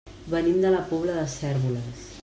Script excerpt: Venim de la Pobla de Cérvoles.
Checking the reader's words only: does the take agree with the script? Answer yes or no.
yes